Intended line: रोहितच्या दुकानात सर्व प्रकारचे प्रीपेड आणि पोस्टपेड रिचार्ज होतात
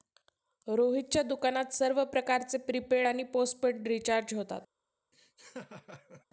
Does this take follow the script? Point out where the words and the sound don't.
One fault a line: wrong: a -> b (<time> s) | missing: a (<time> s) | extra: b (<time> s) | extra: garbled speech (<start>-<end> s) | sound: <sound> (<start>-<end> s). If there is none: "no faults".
sound: laugh (5.1-6.3 s)